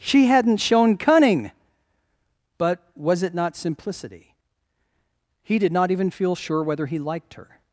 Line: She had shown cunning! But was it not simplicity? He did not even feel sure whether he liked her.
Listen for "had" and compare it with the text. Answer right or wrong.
wrong